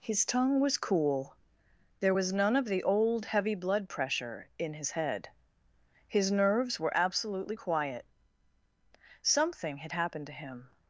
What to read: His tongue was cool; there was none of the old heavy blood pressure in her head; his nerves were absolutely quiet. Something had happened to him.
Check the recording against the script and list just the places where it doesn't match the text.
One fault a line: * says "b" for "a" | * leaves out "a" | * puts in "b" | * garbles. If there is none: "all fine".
* says "his" for "her"